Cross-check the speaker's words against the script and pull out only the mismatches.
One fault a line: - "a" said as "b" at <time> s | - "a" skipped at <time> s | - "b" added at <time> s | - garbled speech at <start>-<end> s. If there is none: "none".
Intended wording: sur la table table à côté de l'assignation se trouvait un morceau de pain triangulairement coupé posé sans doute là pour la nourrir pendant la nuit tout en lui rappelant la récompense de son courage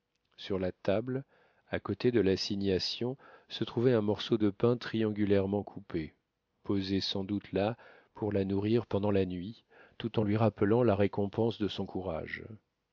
- "table" skipped at 1.2 s